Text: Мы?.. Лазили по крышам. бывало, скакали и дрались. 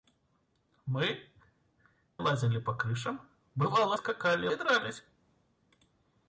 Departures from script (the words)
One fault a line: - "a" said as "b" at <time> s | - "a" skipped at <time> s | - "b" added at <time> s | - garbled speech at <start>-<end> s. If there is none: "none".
none